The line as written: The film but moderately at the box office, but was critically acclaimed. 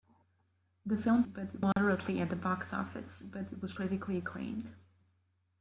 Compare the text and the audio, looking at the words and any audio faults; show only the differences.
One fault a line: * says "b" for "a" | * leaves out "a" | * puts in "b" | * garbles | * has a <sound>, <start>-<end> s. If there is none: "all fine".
* has a dropout, 1.7-1.8 s